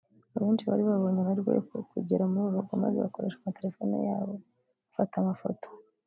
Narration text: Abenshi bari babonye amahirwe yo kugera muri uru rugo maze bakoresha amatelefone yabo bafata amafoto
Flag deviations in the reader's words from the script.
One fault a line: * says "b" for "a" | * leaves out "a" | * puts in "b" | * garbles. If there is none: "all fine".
all fine